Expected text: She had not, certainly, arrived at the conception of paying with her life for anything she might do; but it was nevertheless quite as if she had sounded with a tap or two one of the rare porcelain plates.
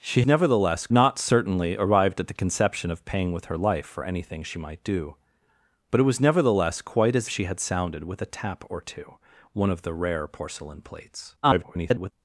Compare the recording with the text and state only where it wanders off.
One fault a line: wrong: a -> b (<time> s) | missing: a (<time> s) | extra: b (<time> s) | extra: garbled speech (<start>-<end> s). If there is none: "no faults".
wrong: had -> nevertheless (0.3 s)
missing: if (7.3 s)
extra: garbled speech (11.4-12.1 s)